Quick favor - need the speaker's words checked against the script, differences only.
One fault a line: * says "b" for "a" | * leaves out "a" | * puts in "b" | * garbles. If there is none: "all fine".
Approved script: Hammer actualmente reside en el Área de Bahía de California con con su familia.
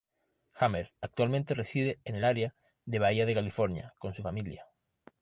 * leaves out "con"